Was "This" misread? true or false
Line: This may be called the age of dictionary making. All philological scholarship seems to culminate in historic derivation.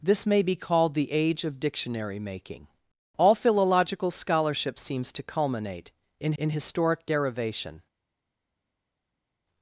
false